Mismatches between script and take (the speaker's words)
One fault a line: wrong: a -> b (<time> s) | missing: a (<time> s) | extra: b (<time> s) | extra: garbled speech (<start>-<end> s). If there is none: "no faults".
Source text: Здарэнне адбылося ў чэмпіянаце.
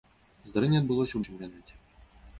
no faults